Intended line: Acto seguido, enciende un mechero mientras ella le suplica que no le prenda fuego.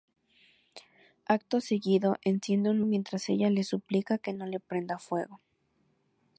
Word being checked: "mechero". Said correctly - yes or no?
no